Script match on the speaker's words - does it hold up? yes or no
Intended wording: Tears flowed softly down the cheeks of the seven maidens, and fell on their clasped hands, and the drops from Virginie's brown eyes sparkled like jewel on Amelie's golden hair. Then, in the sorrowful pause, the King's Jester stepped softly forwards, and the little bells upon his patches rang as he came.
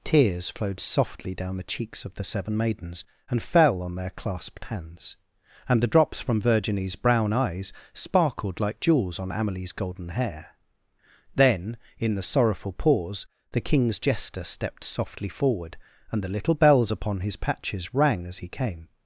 no